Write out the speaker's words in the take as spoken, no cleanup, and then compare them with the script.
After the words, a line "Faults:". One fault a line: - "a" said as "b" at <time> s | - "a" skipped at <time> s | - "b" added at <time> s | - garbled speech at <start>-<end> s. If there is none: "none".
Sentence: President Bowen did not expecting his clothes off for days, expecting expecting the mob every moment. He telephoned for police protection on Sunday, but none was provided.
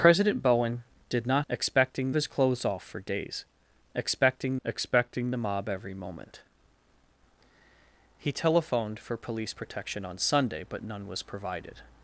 President Bowen did not expecting his clothes off for days, expecting expecting the mob every moment. He telephoned for police protection on Sunday, but none was provided.
Faults:
none